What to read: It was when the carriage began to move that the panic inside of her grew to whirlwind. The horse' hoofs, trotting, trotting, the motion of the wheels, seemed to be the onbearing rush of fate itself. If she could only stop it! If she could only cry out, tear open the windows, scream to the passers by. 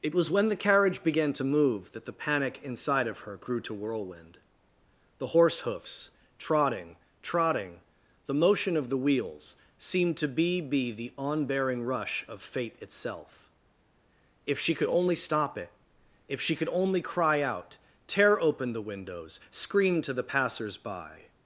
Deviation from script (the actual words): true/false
true